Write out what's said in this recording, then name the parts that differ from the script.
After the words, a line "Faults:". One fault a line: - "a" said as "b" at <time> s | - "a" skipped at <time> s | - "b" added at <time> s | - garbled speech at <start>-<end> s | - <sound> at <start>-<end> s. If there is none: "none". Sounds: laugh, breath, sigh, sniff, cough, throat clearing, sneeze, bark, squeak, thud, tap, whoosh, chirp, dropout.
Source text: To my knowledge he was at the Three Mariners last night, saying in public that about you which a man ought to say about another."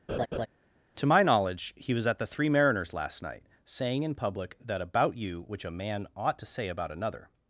To my knowledge he was at the Three Mariners last night, saying in public that about you which a man ought to say about another."
Faults:
- laugh at 0.1-0.5 s